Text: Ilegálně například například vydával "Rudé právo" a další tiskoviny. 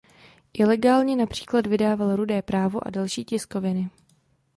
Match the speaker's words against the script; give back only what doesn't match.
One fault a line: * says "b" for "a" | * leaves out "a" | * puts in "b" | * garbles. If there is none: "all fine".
* leaves out "například"